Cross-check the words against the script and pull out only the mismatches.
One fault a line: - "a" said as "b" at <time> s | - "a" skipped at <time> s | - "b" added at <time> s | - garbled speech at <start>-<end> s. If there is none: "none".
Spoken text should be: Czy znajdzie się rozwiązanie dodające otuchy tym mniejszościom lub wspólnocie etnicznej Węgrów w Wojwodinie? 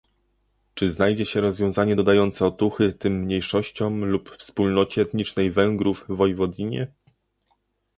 none